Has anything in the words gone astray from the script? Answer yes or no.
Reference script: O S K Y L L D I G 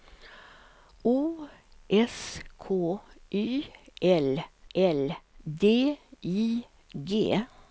no